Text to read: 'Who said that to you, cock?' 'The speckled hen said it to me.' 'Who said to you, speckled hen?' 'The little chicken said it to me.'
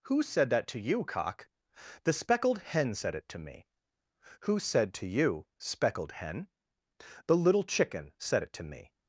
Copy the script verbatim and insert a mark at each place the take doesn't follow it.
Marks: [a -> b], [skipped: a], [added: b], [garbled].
'Who said that to you, cock?' 'The speckled hen said it to me.' 'Who said to you, speckled hen?' 'The little chicken said it to me.'